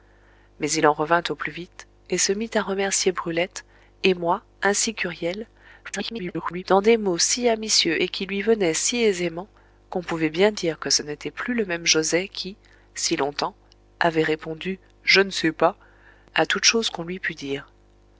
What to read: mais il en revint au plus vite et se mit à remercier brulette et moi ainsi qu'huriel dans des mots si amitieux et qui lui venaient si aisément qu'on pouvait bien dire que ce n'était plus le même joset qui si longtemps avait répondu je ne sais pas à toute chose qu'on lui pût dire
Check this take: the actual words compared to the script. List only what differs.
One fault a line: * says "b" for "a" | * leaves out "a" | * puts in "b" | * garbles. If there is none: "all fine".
* garbles